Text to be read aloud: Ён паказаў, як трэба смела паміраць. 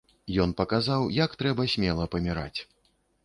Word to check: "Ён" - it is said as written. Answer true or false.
true